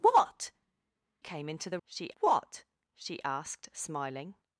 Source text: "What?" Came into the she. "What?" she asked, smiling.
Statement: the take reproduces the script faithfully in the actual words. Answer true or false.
true